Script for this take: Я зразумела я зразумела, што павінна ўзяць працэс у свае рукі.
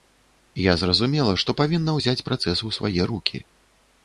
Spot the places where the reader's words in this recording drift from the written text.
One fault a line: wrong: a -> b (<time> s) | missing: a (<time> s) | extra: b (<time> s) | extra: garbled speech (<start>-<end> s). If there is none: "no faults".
missing: я зразумела (1.4 s)